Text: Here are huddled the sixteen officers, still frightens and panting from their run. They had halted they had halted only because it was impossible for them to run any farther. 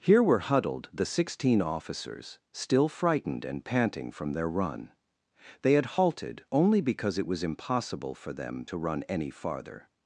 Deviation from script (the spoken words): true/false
true